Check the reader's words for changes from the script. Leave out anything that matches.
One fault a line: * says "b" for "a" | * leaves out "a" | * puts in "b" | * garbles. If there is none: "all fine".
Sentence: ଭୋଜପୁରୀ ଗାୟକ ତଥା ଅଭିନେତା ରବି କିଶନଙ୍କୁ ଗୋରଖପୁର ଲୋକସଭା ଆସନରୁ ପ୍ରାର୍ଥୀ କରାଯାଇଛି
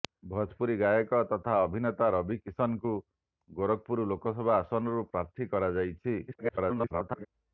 * garbles